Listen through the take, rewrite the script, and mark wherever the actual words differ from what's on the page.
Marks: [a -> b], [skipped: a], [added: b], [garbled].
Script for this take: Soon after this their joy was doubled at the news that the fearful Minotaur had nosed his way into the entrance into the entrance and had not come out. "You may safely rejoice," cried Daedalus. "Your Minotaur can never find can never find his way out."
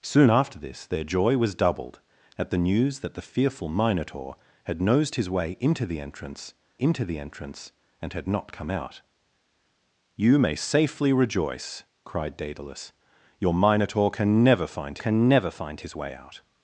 Soon after this their joy was doubled at the news that the fearful Minotaur had nosed his way into the entrance into the entrance and had not come out. "You may safely rejoice," cried Daedalus. "Your Minotaur can never find can never find his way out."